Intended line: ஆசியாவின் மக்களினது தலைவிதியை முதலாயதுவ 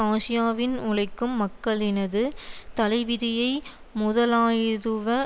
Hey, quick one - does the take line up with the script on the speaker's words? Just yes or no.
no